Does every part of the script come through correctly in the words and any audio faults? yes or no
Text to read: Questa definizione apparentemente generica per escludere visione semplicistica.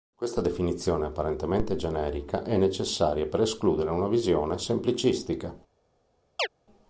no